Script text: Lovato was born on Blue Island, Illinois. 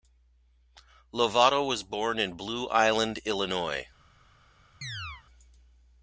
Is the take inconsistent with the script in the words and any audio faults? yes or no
yes